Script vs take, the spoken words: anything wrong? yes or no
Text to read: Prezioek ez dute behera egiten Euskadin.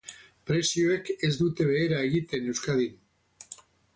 no